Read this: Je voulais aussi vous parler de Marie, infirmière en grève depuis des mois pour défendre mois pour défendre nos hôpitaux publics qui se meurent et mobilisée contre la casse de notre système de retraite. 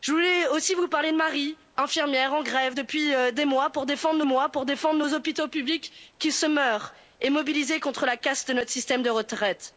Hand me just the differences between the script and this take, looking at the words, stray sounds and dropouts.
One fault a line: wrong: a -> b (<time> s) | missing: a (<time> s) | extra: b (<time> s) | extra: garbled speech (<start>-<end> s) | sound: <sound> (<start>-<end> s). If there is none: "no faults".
no faults